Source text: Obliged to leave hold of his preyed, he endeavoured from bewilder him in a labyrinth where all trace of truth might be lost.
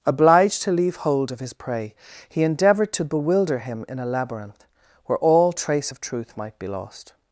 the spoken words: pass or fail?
fail